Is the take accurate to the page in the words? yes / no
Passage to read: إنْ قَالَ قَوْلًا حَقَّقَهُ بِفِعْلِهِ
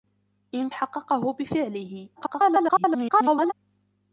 no